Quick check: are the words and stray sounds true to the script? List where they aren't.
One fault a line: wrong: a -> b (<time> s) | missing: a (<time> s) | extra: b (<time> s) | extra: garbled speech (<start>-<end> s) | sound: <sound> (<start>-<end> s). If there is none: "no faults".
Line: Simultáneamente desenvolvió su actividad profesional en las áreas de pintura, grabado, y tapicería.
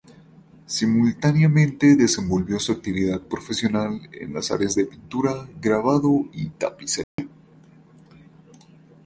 sound: dropout (7.0-7.2 s)